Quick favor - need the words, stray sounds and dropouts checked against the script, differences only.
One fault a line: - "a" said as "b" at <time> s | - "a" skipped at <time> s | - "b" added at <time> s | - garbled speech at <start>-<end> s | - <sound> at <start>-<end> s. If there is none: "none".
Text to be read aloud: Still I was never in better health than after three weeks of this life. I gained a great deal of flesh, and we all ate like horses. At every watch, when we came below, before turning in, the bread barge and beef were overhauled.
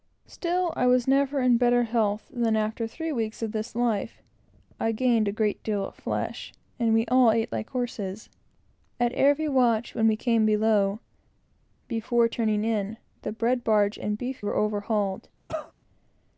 - cough at 15.5-15.7 s